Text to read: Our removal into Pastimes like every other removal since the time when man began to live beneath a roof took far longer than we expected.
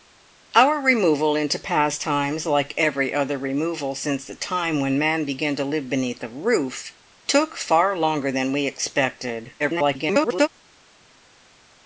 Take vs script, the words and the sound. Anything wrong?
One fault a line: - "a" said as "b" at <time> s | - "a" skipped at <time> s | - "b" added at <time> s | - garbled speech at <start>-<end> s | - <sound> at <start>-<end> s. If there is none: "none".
- garbled speech at 9.6-10.5 s